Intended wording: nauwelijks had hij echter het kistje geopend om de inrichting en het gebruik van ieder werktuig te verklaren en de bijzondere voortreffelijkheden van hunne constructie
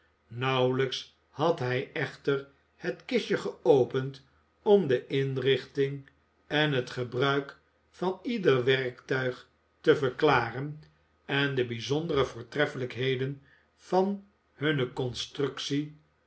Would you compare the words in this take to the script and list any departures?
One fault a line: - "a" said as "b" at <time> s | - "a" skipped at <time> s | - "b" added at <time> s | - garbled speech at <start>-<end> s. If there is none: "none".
none